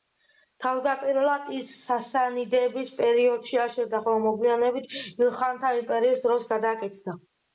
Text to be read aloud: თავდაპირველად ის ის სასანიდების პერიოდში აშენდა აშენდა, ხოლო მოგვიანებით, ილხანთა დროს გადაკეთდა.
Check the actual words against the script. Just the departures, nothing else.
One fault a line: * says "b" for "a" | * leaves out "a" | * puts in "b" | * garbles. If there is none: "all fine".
* leaves out "ის"
* leaves out "აშენდა"
* puts in "იმპერიის"